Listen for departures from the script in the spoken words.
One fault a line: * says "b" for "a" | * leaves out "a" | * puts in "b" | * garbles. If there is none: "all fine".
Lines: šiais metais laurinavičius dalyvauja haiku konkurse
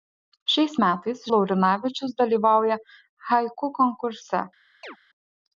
all fine